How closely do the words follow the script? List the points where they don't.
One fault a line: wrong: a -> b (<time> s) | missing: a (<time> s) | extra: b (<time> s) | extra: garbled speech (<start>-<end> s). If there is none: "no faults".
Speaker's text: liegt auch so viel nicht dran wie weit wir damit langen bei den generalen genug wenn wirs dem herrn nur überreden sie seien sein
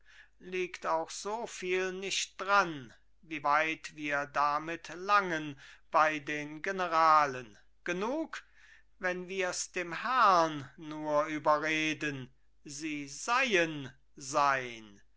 no faults